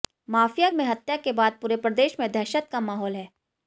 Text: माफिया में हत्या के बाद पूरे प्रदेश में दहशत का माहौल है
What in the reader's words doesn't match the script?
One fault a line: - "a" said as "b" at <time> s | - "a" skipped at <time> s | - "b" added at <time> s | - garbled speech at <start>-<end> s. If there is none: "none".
none